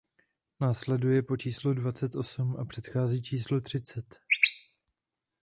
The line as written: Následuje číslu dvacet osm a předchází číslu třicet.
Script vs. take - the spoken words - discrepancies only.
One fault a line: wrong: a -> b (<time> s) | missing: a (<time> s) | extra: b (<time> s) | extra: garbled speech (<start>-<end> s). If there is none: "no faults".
extra: po (1.2 s)